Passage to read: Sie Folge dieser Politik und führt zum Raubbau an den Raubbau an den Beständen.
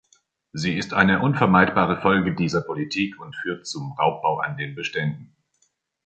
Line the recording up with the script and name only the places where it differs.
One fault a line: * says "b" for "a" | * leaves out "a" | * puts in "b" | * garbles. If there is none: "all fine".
* puts in "ist eine unvermeidbare"
* leaves out "Raubbau an den"